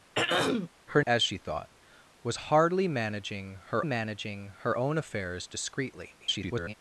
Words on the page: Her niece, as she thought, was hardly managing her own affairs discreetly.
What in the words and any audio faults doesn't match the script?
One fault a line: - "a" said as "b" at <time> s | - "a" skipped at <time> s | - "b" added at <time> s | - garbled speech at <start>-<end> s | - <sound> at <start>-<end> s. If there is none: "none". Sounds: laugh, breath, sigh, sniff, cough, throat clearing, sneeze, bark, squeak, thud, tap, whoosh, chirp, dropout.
- throat clearing at 0.1-0.7 s
- "niece" skipped at 1.0 s
- "managing her" added at 3.8 s
- garbled speech at 6.2-6.7 s